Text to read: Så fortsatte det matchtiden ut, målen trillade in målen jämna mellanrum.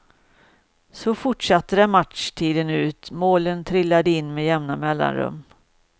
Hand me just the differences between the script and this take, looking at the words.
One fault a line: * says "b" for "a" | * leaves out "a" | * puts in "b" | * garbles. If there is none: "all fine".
* says "med" for "målen"